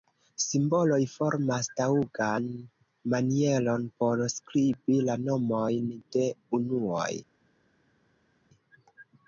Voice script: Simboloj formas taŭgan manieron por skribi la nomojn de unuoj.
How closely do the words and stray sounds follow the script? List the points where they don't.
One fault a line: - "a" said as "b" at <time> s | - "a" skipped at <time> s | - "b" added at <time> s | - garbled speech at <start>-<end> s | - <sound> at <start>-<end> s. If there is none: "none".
none